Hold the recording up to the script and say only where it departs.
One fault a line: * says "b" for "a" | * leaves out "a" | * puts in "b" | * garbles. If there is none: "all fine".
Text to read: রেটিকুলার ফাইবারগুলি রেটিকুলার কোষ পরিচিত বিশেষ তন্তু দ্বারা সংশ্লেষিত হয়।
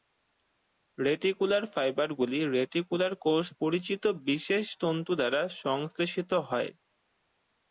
all fine